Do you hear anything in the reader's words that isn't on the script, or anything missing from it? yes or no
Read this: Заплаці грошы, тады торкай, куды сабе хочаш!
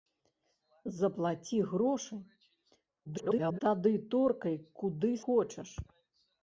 yes